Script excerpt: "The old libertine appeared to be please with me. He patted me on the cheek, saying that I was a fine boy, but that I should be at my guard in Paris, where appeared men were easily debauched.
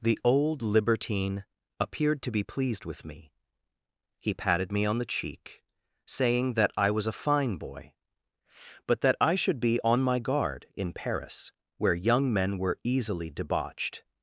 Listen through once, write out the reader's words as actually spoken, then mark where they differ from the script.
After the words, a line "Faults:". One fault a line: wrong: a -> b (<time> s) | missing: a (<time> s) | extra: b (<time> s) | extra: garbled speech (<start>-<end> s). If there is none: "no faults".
"The old libertine appeared to be pleased with me. He patted me on the cheek, saying that I was a fine boy, but that I should be on my guard in Paris, where young men were easily debauched.
Faults:
wrong: please -> pleased (2.4 s)
wrong: at -> on (9.8 s)
wrong: appeared -> young (11.9 s)